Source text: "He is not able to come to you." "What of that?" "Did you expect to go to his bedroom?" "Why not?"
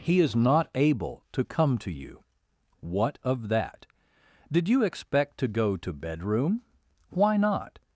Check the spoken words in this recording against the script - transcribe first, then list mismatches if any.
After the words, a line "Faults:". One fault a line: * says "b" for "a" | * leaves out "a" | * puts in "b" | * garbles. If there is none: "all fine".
"He is not able to come to you." "What of that?" "Did you expect to go to bedroom?" "Why not?"
Faults:
* leaves out "his"